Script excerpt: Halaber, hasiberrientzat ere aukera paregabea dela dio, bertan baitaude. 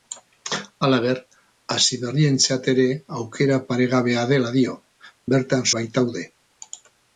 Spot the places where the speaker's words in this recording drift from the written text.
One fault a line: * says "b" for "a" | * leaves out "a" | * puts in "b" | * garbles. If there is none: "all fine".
all fine